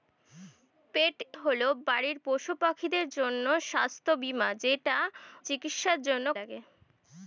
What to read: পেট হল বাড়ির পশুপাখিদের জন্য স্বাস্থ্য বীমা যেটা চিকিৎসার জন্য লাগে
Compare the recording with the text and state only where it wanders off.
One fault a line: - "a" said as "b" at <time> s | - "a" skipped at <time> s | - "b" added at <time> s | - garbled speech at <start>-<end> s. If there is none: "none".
none